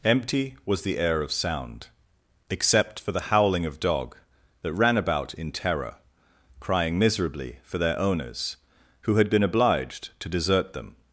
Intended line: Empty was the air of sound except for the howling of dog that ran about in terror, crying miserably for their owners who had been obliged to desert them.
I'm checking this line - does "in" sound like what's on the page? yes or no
yes